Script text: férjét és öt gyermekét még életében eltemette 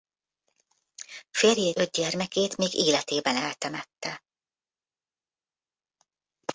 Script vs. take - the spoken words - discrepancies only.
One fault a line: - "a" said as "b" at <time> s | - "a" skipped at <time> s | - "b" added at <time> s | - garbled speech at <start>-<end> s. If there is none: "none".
- "és" skipped at 1.8 s